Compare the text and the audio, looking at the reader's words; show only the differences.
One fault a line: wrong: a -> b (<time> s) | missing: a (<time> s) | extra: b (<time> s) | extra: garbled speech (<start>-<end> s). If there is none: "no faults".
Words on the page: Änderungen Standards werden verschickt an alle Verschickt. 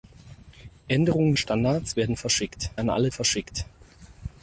no faults